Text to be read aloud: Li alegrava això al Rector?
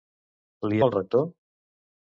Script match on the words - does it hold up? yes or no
no